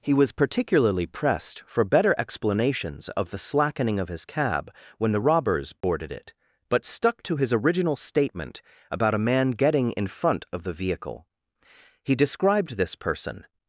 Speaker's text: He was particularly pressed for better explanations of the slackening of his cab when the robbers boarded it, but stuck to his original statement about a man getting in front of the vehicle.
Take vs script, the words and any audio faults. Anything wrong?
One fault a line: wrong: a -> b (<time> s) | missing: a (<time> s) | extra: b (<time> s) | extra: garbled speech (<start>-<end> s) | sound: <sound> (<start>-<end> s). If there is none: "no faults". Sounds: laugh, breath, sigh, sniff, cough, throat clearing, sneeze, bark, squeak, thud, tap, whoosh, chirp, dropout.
sound: dropout (5.8-5.8 s)
extra: He described this person (12.0 s)